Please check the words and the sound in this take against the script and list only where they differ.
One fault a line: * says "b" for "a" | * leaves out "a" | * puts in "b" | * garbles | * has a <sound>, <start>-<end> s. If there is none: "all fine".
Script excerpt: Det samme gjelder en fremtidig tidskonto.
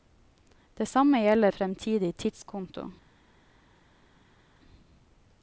* leaves out "en"